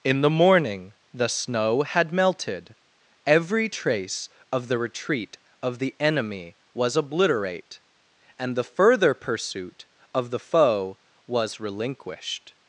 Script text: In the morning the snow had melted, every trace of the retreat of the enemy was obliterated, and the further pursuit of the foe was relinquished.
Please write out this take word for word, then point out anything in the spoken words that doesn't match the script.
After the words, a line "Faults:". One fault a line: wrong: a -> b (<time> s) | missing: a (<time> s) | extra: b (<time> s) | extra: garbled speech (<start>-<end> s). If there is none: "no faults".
In the morning the snow had melted, every trace of the retreat of the enemy was obliterate, and the further pursuit of the foe was relinquished.
Faults:
wrong: obliterated -> obliterate (7.0 s)